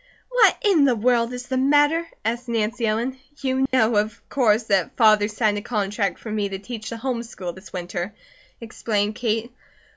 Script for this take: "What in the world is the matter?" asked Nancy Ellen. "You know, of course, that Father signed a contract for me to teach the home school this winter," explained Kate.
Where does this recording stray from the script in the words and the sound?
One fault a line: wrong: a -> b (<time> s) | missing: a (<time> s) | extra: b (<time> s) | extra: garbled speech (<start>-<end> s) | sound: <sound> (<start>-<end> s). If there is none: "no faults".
sound: dropout (3.7-3.7 s)